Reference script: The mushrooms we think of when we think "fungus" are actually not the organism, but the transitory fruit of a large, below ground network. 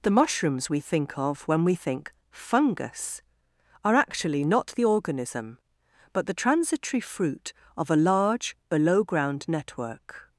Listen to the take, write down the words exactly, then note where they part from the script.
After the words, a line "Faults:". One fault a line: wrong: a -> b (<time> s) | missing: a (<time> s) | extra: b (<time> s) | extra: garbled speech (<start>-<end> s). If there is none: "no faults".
The mushrooms we think of when we think "fungus" are actually not the organism, but the transitory fruit of a large, below ground network.
Faults:
no faults